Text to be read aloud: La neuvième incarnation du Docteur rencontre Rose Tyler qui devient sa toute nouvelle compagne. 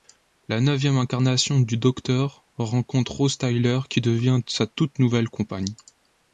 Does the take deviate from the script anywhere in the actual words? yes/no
no